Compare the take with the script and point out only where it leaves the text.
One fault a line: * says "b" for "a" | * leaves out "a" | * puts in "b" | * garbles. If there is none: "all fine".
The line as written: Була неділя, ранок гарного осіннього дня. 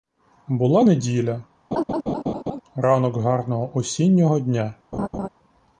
all fine